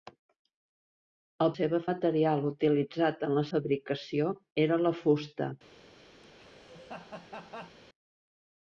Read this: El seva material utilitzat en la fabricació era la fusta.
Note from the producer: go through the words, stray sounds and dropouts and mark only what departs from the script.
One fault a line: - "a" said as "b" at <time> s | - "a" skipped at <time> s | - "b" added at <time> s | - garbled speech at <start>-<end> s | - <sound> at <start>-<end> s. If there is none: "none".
- laugh at 6.2-7.8 s